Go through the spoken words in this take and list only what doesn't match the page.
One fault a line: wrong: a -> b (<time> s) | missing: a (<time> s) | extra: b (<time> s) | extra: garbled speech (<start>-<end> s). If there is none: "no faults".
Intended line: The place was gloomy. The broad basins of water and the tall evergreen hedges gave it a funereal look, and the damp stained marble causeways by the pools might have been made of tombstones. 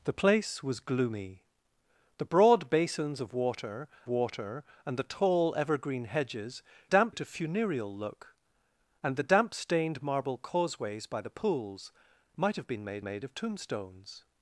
extra: water (4.1 s)
wrong: gave -> damp (6.9 s)
extra: made (13.0 s)